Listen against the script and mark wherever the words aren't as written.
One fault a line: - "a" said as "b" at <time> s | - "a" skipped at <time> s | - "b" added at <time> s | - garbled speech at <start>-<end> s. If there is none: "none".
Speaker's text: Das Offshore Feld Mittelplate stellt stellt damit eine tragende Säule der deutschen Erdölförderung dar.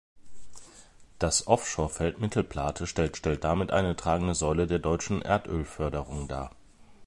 none